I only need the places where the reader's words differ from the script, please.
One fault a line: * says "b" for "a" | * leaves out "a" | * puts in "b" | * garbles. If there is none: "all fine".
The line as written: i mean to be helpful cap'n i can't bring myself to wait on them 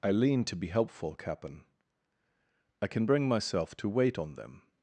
* says "lean" for "mean"
* says "can" for "can't"